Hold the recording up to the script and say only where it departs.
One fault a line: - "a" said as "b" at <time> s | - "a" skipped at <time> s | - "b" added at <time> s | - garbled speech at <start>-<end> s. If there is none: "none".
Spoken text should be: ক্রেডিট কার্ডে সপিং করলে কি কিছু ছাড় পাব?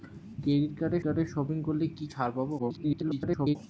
- "কার্ডে" added at 1.0 s
- "কিছু" skipped at 2.1 s
- garbled speech at 2.6-3.6 s